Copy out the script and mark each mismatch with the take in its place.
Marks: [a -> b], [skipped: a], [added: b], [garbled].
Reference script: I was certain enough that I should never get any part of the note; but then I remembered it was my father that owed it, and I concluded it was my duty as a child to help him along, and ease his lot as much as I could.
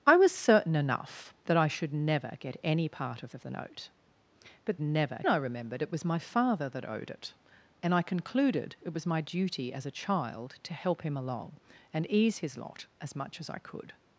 I was certain enough that I should never get any part of [added: of] the note; but [then -> never] I remembered it was my father that owed it, and I concluded it was my duty as a child to help him along, and ease his lot as much as I could.